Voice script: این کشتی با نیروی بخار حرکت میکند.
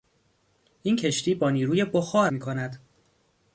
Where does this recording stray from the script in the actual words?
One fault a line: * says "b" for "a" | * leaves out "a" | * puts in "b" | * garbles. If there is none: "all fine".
* leaves out "حرکت"